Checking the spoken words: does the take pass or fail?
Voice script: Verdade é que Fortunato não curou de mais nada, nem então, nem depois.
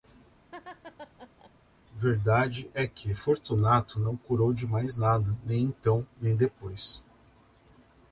pass